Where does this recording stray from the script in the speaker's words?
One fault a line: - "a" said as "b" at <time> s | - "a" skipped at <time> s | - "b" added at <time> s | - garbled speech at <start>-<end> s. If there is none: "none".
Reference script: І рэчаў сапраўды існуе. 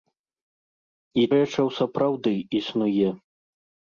none